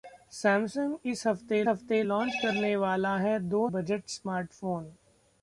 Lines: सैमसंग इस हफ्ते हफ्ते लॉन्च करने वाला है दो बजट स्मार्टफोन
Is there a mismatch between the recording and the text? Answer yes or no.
no